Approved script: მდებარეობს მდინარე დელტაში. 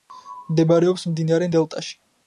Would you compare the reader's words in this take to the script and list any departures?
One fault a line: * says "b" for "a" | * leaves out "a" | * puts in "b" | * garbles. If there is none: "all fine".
all fine